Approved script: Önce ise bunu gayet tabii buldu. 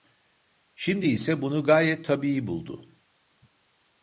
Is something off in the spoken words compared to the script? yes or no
yes